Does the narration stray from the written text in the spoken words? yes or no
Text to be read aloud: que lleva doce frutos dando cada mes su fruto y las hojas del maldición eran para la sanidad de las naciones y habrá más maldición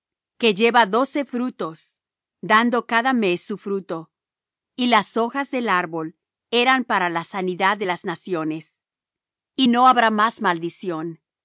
yes